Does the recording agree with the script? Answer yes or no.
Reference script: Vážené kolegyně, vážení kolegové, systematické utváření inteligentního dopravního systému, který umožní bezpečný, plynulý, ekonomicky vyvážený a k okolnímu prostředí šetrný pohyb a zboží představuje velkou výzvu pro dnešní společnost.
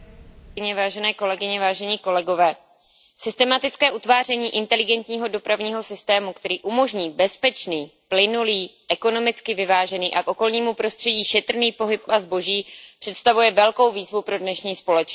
yes